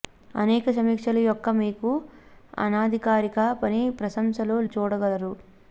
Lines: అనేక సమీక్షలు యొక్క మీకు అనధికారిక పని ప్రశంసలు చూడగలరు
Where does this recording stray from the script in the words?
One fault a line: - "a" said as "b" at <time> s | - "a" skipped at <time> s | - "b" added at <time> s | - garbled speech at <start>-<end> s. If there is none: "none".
none